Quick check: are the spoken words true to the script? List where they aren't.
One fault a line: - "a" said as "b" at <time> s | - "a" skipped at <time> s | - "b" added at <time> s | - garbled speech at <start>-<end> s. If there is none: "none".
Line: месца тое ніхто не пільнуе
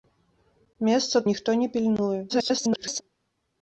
- "тое" skipped at 1.2 s
- garbled speech at 2.3-3.0 s